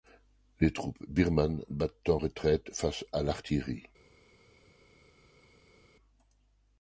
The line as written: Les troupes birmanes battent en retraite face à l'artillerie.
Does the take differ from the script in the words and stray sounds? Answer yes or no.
no